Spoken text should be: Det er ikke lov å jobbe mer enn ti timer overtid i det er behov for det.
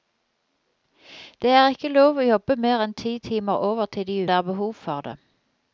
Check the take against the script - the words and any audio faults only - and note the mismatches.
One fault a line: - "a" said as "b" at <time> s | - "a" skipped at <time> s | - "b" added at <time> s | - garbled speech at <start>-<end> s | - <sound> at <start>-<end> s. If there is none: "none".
none